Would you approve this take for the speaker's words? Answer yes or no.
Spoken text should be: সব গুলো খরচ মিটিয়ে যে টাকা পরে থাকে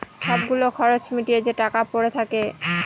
yes